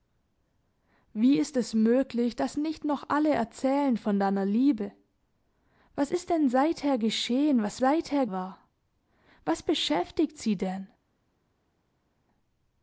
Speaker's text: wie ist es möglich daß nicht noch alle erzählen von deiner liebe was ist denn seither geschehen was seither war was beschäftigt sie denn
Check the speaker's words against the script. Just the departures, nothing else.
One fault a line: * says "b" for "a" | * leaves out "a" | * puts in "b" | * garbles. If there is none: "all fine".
all fine